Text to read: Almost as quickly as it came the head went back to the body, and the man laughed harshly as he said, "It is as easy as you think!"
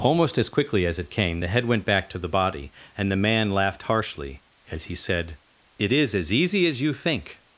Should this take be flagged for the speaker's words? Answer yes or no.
no